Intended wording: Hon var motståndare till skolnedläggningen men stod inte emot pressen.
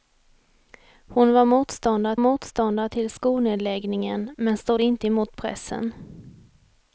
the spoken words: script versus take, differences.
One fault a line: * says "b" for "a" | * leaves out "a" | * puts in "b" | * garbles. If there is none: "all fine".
* puts in "motståndare"